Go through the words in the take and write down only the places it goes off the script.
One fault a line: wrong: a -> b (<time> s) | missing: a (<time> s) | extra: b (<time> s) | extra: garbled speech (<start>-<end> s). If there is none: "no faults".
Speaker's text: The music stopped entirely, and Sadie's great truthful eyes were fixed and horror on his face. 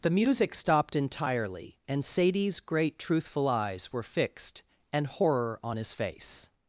no faults